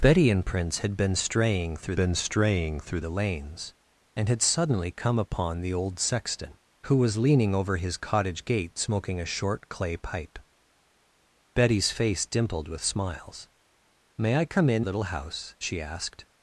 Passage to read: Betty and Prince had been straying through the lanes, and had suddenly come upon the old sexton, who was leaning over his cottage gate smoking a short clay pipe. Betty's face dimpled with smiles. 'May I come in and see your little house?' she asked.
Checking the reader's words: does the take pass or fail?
fail